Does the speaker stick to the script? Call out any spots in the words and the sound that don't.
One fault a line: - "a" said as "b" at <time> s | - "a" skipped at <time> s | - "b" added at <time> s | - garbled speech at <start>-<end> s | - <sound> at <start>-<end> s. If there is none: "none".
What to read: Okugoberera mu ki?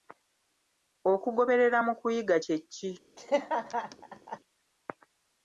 - "kuyiga kye" added at 2.0 s
- laugh at 3.2-4.4 s